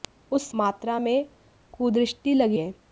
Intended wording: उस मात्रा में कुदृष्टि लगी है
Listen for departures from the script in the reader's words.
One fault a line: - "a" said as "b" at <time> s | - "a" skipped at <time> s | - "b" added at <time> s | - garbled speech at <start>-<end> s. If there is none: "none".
none